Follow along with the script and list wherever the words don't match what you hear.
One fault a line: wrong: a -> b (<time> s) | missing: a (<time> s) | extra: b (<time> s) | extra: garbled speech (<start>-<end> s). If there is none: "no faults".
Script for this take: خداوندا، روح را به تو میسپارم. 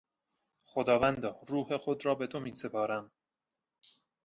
extra: خود (1.8 s)